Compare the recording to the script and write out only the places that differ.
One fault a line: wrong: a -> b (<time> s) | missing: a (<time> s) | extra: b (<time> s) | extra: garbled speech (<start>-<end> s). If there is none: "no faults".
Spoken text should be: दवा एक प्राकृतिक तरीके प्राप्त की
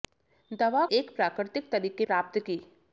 no faults